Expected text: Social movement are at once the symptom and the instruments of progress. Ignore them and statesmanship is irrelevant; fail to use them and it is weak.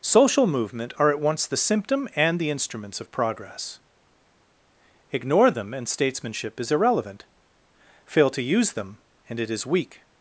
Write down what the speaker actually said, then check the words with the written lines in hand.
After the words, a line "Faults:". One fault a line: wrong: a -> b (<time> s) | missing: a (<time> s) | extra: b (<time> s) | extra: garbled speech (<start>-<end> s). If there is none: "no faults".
Social movement are at once the symptom and the instruments of progress. Ignore them and statesmanship is irrelevant; fail to use them and it is weak.
Faults:
no faults